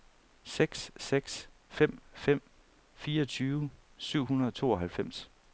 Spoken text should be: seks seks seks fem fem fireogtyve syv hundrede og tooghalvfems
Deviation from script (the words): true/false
true